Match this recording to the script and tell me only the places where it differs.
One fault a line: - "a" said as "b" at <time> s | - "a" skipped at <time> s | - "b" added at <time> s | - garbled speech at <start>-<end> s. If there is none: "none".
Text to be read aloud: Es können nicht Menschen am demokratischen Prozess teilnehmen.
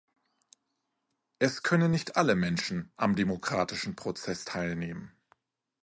- "alle" added at 2.2 s